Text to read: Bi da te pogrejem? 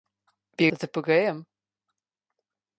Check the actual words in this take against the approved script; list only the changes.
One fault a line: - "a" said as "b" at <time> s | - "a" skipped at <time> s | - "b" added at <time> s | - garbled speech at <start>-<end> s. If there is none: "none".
none